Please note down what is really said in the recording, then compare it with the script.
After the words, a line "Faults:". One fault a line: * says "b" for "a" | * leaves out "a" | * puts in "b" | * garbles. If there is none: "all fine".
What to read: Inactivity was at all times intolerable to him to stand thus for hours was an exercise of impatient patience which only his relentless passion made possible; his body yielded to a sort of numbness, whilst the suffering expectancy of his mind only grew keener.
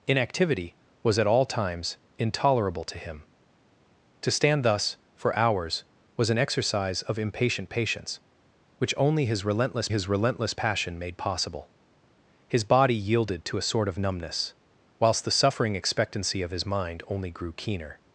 Inactivity was at all times intolerable to him to stand thus for hours was an exercise of impatient patience which only his relentless his relentless passion made possible; his body yielded to a sort of numbness, whilst the suffering expectancy of his mind only grew keener.
Faults:
* puts in "his relentless"